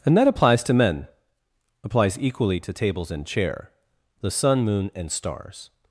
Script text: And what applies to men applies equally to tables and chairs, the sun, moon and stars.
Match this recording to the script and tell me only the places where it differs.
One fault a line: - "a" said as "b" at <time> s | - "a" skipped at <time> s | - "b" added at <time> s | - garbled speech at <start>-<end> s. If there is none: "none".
- "what" said as "that" at 0.2 s
- "chairs" said as "chair" at 3.2 s